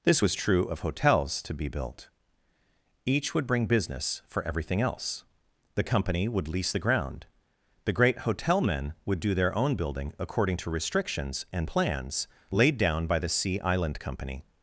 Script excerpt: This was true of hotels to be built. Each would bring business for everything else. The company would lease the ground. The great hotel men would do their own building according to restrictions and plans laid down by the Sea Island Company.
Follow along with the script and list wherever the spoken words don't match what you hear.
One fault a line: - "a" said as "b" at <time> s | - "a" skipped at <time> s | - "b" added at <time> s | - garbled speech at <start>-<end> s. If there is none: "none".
none